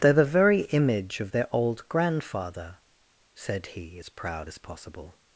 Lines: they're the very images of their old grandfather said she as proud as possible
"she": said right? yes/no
no